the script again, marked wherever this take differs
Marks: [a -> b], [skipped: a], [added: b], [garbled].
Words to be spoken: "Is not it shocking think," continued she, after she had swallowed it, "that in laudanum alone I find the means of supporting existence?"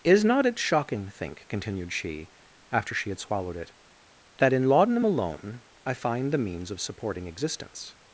"Is not it shocking think," continued she, after she had swallowed it, "that in laudanum alone I find the means of supporting existence?"